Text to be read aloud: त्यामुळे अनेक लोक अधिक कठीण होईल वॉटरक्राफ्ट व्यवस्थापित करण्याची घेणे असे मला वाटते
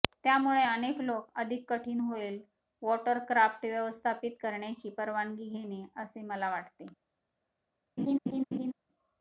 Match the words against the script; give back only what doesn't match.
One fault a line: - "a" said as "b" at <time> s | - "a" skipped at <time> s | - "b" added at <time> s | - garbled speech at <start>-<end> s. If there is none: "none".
- "परवानगी" added at 5.0 s